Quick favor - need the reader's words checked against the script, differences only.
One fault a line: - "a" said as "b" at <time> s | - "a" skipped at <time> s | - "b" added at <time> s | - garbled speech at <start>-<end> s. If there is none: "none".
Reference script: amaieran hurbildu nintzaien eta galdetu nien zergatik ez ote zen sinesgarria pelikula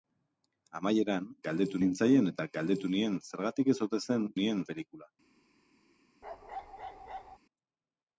- "hurbildu" said as "galdetu" at 1.5 s
- "sinesgarria" said as "nien" at 4.4 s